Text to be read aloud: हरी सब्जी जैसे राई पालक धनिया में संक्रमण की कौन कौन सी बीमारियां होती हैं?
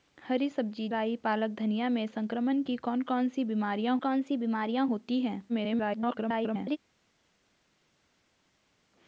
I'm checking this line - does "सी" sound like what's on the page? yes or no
yes